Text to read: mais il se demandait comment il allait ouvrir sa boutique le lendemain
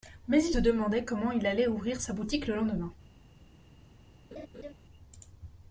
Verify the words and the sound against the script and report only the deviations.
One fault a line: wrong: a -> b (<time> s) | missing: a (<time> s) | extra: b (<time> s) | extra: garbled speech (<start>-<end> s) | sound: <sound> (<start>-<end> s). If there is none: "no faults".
missing: se (0.6 s)
sound: laugh (4.3-4.7 s)